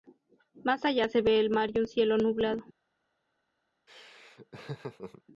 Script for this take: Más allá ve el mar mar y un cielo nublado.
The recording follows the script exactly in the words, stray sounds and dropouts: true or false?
false